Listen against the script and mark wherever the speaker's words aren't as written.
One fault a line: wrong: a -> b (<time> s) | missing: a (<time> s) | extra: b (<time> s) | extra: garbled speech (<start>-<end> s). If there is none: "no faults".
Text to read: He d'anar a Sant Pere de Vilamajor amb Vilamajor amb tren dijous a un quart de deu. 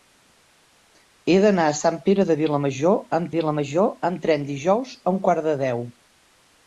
no faults